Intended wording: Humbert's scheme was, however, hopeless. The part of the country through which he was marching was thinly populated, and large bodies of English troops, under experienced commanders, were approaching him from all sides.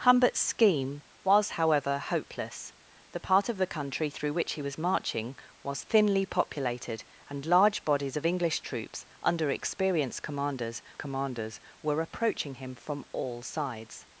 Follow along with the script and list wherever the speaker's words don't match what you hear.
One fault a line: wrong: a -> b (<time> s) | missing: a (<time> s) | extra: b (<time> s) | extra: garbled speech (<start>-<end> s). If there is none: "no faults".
extra: commanders (11.0 s)